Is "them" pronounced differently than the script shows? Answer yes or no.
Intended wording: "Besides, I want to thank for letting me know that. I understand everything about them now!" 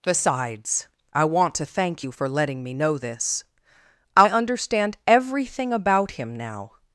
yes